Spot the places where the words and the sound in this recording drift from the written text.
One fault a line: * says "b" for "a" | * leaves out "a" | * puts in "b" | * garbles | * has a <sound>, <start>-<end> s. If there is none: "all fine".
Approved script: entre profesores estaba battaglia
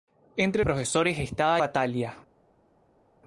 all fine